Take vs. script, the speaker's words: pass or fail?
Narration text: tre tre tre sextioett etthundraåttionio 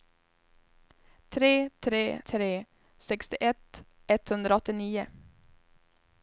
pass